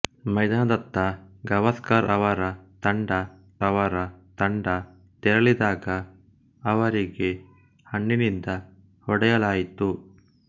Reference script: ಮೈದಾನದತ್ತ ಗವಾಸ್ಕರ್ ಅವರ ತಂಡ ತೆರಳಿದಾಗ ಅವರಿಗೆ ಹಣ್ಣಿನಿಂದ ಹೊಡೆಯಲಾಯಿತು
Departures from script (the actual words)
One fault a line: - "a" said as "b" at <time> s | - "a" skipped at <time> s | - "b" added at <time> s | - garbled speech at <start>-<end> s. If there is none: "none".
- "ಅವರ ತಂಡ" added at 3.6 s